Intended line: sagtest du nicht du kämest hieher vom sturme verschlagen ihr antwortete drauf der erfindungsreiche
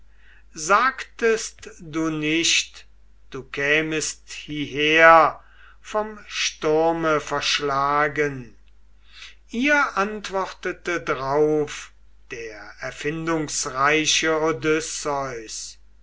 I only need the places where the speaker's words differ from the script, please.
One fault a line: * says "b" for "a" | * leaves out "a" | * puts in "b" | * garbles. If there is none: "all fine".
all fine